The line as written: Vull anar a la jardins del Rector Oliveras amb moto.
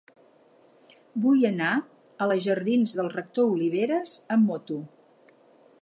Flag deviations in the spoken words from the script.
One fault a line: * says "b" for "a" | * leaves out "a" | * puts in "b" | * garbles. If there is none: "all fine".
all fine